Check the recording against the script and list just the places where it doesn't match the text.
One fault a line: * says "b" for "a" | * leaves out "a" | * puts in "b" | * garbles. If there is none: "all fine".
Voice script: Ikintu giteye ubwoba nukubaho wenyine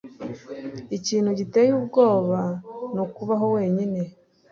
all fine